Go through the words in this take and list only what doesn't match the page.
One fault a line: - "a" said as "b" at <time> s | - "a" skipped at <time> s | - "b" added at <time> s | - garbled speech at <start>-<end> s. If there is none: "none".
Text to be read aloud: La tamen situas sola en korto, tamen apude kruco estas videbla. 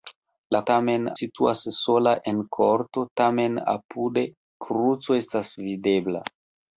none